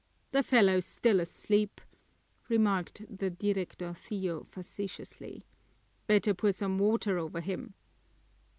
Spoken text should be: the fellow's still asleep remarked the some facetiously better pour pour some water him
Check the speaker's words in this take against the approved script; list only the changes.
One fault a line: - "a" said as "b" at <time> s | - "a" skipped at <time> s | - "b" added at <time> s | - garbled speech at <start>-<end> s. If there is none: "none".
- "some" said as "directorcillo" at 3.3 s
- "pour" skipped at 6.5 s
- "over" added at 7.2 s